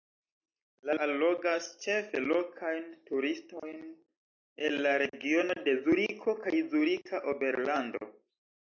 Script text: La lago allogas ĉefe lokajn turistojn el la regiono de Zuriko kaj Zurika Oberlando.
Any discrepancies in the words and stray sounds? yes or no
yes